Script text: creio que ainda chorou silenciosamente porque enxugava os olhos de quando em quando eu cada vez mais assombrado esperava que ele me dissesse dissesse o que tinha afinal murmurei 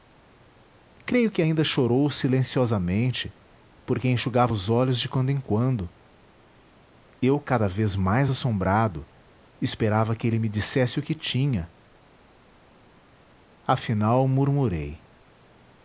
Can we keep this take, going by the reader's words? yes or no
no